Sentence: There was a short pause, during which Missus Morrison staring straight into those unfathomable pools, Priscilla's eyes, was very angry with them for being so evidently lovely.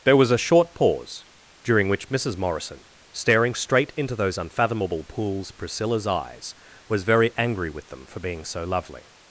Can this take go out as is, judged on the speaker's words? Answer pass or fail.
fail